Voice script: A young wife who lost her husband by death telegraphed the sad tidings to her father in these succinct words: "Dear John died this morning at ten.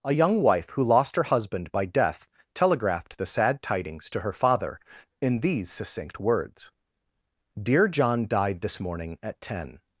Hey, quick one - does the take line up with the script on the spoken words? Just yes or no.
yes